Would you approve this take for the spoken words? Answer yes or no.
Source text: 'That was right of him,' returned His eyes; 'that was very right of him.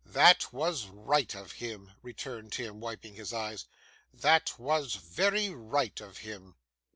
no